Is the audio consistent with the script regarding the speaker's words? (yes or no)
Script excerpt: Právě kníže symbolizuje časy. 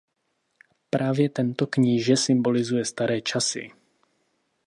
no